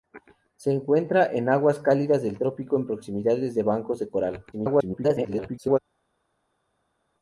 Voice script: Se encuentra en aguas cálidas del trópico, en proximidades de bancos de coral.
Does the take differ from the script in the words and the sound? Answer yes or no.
yes